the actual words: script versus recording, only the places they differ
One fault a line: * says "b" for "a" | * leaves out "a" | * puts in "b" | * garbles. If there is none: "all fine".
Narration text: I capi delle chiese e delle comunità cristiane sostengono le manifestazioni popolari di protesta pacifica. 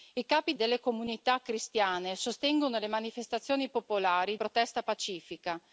* leaves out "delle chiese"
* leaves out "di"